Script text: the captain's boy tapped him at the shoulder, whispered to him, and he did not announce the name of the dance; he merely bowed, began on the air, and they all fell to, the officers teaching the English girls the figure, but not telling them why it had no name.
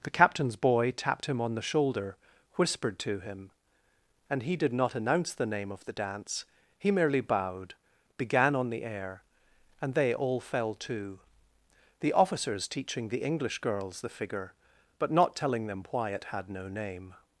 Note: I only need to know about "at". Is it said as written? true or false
false